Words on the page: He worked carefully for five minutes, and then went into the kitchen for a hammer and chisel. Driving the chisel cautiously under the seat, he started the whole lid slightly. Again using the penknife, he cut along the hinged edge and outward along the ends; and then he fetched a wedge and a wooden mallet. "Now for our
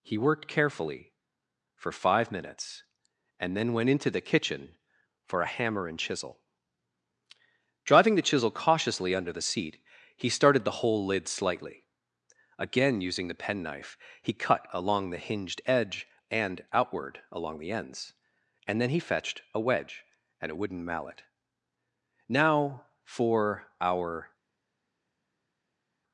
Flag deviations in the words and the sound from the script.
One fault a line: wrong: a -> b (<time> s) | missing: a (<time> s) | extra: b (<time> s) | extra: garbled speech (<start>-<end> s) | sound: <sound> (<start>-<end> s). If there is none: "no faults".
no faults